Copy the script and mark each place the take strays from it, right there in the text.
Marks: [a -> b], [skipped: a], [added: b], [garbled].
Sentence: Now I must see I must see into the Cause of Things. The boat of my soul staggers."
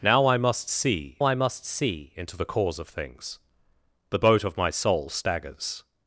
Now I must see I must see into the Cause of Things. The boat of my soul staggers."